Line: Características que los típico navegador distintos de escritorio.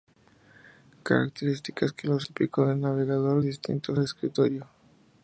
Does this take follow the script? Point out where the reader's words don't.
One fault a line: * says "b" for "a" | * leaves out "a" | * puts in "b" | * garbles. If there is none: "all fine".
all fine